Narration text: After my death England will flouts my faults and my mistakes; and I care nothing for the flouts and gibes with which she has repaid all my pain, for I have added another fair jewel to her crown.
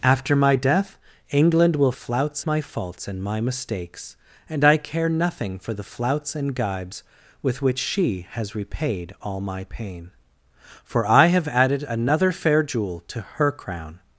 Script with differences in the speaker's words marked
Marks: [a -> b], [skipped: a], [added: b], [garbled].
After my death England will flouts my faults and my mistakes; and I care nothing for the flouts and gibes with which she has repaid all my pain, for I have added another fair jewel to her crown.